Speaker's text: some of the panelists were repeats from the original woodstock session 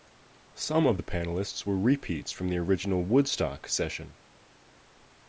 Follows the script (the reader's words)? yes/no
yes